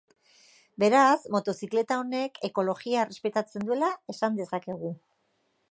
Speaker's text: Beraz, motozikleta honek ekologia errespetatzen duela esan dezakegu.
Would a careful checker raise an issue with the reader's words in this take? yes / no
no